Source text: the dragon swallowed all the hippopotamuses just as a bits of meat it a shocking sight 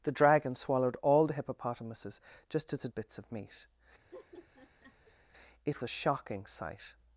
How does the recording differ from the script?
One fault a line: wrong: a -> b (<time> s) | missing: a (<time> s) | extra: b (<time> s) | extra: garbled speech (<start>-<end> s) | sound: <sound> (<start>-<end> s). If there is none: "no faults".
sound: laugh (4.1-5.3 s)